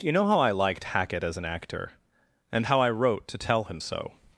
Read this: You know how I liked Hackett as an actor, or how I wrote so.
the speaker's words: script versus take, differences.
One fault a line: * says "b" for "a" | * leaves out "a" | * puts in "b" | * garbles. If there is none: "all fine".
* says "and" for "or"
* puts in "to tell him"